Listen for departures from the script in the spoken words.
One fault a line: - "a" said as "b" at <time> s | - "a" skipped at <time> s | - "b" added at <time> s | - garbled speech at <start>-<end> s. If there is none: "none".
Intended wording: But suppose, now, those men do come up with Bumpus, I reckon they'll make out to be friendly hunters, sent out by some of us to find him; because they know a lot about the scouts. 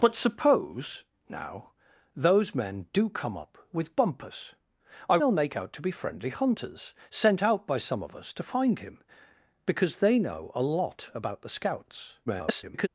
- "reckon" skipped at 5.2 s
- garbled speech at 12.3-12.9 s